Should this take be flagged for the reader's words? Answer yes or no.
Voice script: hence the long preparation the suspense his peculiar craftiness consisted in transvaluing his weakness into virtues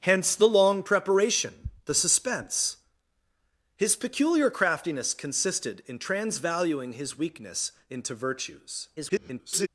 yes